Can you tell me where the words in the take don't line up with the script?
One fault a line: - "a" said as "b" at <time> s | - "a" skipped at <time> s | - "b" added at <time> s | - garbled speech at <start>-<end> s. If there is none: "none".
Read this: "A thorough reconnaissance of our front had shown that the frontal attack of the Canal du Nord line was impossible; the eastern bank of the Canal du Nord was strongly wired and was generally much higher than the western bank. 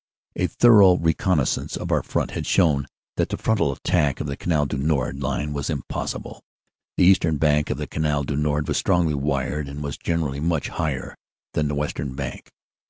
none